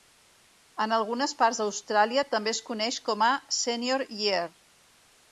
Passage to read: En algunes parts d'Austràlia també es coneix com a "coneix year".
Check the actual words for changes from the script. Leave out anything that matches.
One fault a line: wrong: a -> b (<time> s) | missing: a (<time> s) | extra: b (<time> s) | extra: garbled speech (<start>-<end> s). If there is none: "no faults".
wrong: coneix -> senior (3.6 s)